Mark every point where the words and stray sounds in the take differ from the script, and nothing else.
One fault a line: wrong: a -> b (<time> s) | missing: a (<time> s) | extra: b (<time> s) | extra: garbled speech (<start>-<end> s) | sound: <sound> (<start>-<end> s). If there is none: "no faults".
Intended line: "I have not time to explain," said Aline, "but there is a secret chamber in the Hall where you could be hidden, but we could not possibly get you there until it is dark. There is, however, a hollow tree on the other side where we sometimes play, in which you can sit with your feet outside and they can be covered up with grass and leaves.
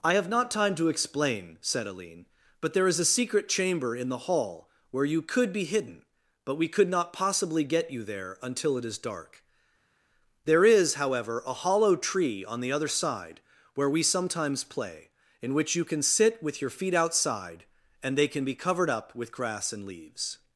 no faults